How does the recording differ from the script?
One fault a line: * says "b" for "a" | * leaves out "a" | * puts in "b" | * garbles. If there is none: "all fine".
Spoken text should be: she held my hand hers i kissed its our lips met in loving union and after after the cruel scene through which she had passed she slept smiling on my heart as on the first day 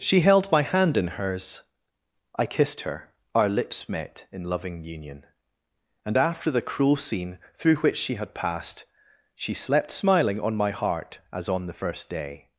* puts in "in"
* says "her" for "its"
* leaves out "after"